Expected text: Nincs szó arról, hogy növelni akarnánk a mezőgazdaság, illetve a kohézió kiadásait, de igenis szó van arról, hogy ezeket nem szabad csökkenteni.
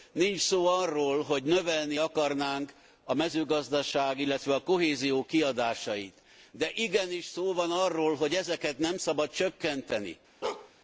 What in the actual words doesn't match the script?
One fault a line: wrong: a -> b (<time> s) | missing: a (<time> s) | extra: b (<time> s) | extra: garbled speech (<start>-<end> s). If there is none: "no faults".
no faults